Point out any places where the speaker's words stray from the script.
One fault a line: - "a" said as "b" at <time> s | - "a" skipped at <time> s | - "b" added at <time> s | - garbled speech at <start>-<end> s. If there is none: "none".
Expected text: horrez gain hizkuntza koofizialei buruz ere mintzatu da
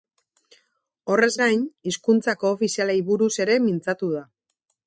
none